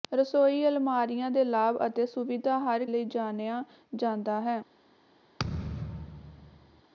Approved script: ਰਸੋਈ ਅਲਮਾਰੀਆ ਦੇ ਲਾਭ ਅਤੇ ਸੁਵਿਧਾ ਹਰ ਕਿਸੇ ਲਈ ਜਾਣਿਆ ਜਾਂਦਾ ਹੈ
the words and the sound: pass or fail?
fail